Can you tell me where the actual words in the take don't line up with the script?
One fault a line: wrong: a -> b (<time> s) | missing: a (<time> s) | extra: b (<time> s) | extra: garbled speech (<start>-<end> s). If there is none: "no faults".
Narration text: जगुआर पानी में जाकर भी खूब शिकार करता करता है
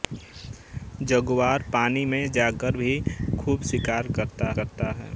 no faults